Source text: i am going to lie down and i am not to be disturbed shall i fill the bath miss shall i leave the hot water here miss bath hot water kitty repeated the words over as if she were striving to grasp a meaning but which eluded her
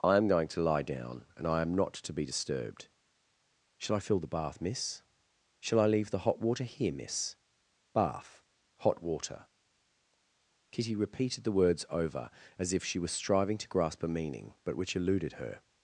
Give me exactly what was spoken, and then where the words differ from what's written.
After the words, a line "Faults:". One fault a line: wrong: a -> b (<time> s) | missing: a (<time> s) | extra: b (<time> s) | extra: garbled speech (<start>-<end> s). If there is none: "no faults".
i am going to lie down and i am not to be disturbed shall i fill the bath miss shall i leave the hot water here miss bath hot water kitty repeated the words over as if she was striving to grasp a meaning but which eluded her
Faults:
wrong: were -> was (13.0 s)